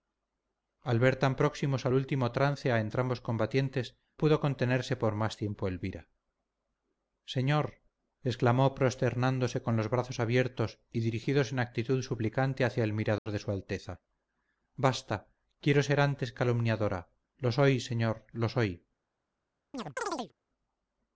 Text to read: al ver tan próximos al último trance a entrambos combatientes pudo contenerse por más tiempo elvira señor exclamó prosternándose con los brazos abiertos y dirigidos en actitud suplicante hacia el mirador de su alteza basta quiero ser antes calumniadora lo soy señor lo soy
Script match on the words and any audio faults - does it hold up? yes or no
no